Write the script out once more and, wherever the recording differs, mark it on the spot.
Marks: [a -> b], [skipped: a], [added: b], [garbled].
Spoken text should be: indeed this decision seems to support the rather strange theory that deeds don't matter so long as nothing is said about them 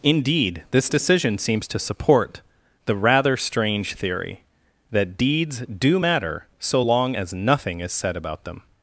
indeed this decision seems to support the rather strange theory that deeds [don't -> do] matter so long as nothing is said about them